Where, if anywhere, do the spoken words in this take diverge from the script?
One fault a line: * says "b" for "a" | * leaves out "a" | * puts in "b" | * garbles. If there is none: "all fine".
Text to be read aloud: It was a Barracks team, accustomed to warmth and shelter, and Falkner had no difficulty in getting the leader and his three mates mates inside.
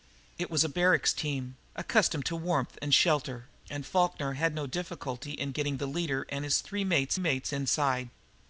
all fine